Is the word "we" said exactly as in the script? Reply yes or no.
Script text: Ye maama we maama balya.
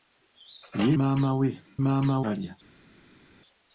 yes